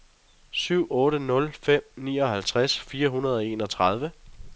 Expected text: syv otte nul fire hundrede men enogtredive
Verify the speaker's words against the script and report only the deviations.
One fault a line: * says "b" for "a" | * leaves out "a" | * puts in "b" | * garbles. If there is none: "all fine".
* puts in "fem nioghalvtreds"
* says "og" for "men"